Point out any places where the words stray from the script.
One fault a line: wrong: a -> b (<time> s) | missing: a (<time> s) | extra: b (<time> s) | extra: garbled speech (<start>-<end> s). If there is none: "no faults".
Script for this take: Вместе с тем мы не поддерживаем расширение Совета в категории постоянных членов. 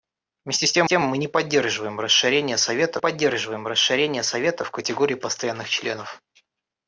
extra: тем (0.9 s)
extra: поддерживаем расширение Совета (3.0 s)